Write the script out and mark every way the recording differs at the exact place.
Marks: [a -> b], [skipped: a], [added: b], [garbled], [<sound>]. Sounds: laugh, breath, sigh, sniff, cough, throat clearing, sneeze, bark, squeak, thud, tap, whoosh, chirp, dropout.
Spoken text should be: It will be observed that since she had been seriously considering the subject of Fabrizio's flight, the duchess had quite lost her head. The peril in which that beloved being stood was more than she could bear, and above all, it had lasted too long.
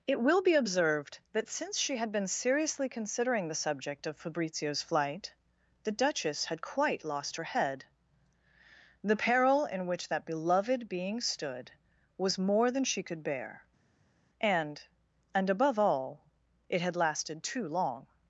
It will be observed that since she had been seriously considering the subject of Fabrizio's flight, the duchess had quite lost her head. The peril in which that beloved being stood was more than she could bear, and [added: and] above all, it had lasted too long.